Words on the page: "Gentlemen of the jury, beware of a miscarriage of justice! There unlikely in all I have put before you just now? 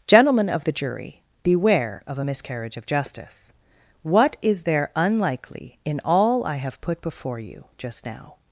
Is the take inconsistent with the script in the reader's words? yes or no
yes